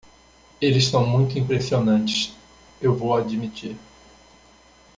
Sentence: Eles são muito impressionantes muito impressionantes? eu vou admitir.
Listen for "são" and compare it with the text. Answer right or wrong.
right